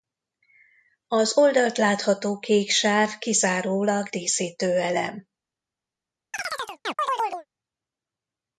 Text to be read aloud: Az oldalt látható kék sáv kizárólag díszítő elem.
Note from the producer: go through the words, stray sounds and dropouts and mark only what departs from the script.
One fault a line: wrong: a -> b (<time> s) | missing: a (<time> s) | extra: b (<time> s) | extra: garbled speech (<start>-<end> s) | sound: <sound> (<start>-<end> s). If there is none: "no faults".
sound: chirp (6.3-7.5 s)